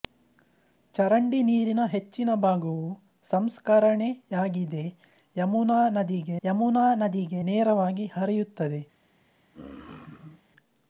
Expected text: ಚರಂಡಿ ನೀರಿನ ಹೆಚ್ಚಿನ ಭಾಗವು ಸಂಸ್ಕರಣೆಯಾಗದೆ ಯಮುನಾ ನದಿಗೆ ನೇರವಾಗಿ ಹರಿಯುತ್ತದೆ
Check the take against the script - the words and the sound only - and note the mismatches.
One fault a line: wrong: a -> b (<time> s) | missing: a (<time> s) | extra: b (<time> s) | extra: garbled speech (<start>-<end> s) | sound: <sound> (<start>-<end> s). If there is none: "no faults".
extra: ಯಮುನಾ ನದಿಗೆ (6.4 s)
sound: throat clearing (9.5-10.4 s)